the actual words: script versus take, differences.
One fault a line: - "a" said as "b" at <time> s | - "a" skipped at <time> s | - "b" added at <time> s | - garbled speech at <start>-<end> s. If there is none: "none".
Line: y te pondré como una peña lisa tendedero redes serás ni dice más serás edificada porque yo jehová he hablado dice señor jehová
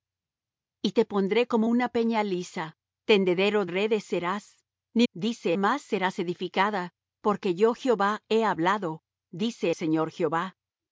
none